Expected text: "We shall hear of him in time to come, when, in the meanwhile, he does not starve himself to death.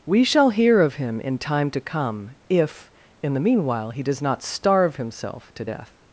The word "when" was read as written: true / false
false